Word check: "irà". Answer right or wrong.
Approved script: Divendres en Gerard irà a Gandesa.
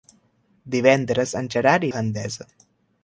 wrong